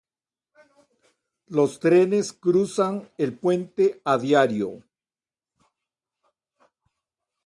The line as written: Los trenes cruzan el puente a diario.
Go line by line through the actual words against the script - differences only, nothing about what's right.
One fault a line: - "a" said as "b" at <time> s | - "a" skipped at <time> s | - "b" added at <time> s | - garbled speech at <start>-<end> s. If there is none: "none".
none